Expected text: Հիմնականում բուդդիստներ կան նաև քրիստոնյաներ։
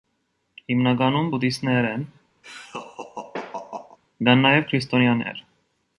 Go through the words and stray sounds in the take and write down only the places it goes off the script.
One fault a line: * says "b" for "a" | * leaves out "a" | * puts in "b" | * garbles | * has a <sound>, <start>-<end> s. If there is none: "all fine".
* puts in "են"
* has a laugh, 2.4-4.0 s